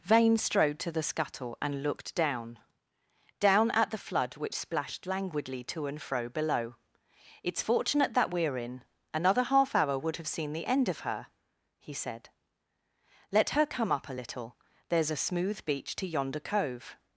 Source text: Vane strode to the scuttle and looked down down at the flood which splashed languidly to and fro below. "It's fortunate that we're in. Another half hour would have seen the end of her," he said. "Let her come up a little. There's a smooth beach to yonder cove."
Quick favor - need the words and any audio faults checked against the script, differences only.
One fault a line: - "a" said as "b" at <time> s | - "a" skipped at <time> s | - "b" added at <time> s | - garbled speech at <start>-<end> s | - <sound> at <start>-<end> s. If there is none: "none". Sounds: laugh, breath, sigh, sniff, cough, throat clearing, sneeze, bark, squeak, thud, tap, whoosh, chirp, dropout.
none